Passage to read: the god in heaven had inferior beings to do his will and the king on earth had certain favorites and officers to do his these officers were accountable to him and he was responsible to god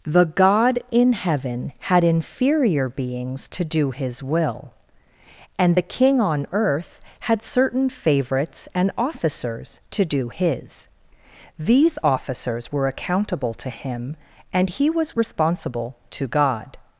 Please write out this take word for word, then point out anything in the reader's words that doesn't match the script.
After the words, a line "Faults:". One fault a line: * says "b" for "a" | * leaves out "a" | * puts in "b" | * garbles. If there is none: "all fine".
the god in heaven had inferior beings to do his will and the king on earth had certain favorites and officers to do his these officers were accountable to him and he was responsible to god
Faults:
all fine